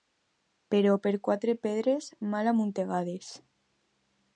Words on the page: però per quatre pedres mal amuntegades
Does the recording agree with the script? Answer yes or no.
yes